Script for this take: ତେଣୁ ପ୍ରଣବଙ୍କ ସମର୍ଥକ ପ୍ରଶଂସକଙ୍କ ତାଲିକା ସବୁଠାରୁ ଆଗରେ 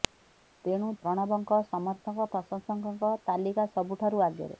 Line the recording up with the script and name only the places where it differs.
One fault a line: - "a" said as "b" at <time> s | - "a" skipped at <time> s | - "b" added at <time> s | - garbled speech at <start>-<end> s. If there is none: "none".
none